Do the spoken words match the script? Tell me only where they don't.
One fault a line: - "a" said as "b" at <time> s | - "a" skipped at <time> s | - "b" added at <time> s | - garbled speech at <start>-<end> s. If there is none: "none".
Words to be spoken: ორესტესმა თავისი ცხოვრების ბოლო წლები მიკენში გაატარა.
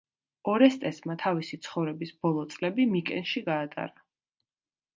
none